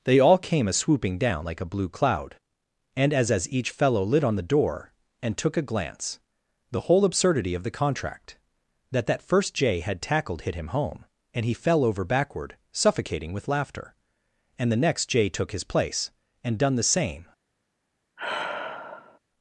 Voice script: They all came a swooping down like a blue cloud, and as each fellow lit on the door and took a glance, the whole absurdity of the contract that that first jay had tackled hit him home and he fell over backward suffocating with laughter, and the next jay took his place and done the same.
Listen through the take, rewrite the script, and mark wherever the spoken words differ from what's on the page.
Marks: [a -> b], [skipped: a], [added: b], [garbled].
They all came a swooping down like a blue cloud, and as [added: as] each fellow lit on the door and took a glance, the whole absurdity of the contract that that first jay had tackled hit him home and he fell over backward suffocating with laughter, and the next jay took his place and done the same.